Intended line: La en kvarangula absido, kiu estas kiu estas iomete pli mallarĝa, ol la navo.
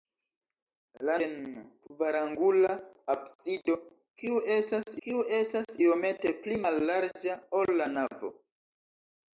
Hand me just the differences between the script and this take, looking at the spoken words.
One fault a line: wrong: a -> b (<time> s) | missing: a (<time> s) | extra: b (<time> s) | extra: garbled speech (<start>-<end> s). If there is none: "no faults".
no faults